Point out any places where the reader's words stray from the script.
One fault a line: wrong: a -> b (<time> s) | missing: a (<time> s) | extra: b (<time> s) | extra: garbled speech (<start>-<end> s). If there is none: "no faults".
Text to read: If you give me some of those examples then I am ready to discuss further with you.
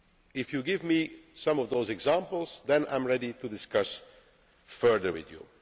no faults